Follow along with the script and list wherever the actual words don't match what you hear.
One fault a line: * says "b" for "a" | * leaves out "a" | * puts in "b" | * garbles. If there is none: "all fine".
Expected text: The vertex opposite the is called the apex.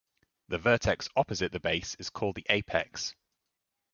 * puts in "base"